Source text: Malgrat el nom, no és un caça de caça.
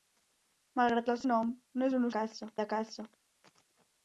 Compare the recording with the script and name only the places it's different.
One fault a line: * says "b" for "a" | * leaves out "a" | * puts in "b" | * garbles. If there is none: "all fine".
all fine